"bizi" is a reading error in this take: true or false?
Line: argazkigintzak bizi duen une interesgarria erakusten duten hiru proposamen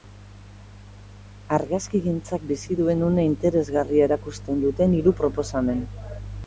false